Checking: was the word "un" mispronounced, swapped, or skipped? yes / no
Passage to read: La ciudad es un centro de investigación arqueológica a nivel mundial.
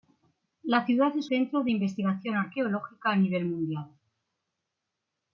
yes